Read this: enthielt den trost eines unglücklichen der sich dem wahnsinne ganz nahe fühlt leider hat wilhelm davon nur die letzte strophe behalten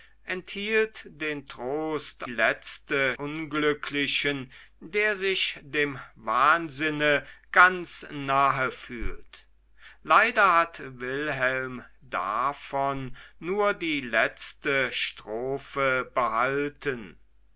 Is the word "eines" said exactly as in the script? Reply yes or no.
no